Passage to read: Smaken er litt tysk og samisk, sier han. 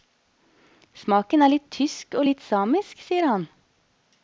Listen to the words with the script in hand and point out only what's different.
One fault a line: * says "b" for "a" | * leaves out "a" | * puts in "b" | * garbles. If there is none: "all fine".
* puts in "litt"